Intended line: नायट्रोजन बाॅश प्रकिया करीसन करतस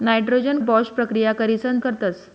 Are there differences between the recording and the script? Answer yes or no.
no